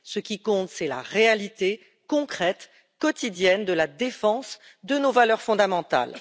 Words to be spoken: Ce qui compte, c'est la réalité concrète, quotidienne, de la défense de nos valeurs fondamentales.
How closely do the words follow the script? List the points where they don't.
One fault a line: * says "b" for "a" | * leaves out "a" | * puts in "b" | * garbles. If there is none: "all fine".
all fine